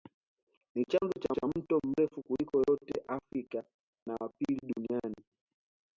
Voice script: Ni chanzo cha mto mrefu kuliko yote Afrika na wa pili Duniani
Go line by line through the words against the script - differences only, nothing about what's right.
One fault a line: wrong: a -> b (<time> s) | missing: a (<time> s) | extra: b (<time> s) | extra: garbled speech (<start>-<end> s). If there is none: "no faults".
extra: cha (1.3 s)